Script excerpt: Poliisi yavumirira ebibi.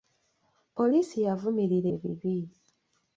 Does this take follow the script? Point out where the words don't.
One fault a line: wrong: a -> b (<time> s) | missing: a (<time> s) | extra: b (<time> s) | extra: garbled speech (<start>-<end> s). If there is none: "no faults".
no faults